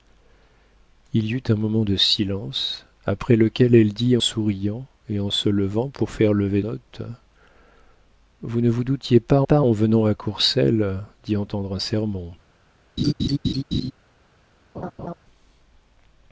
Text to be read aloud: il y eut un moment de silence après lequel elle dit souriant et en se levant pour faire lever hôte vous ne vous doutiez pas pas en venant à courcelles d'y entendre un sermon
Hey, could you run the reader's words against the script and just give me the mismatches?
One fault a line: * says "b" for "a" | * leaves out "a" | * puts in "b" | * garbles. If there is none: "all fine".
all fine